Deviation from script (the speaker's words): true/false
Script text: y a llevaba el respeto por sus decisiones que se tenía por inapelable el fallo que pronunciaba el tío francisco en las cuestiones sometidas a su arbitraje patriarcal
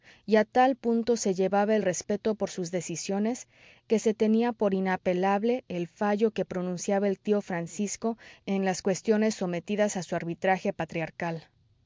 true